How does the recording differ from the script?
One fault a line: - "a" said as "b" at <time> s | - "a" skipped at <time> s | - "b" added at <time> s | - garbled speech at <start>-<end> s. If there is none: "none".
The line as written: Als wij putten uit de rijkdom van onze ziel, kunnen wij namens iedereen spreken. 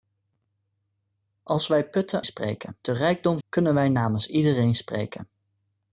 - "uit" said as "spreken" at 2.2 s
- "van onze ziel" skipped at 3.4 s